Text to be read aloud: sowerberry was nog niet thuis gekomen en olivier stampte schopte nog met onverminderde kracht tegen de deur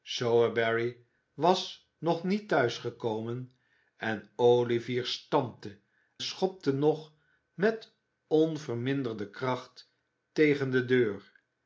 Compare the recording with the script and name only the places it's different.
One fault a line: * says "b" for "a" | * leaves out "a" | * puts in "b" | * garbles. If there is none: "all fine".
all fine